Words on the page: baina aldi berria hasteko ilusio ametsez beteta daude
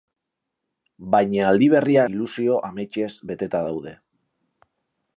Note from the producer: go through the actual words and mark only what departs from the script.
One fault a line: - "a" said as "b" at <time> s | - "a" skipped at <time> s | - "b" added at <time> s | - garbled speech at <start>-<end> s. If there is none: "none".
- "hasteko" skipped at 2.1 s